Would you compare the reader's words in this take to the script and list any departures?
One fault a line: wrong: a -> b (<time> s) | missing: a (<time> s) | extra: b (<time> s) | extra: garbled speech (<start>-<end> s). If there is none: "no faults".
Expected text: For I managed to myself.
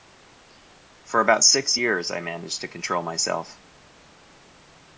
extra: about six years (1.2 s)
extra: control (2.7 s)